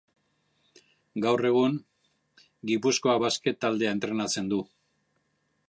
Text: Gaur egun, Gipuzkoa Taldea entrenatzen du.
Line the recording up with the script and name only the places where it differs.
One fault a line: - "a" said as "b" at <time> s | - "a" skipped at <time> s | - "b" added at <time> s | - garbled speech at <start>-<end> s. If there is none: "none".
- "Basket" added at 3.2 s